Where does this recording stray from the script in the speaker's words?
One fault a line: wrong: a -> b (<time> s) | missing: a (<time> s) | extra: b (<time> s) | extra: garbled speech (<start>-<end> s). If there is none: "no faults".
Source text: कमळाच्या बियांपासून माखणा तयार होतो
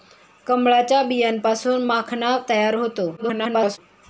extra: garbled speech (3.2-3.8 s)